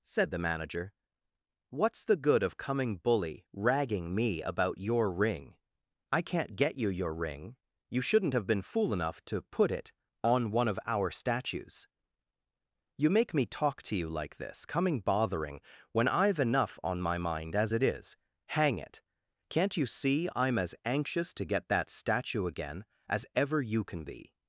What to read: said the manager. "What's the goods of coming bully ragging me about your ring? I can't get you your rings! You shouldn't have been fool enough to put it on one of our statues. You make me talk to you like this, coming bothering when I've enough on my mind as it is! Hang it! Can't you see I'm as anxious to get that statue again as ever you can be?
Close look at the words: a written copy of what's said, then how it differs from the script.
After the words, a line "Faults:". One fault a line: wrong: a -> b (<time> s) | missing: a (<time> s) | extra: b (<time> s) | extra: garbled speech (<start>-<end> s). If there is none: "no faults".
said the manager. "What's the good of coming bully ragging me about your ring? I can't get you your ring! You shouldn't have been fool enough to put it on one of our statues. You make me talk to you like this, coming bothering when I've enough on my mind as it is! Hang it! Can't you see I'm as anxious to get that statue again as ever you can be?
Faults:
wrong: goods -> good (2.1 s)
wrong: rings -> ring (7.1 s)